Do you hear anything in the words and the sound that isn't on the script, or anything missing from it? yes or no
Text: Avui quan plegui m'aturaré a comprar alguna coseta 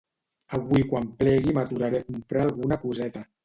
no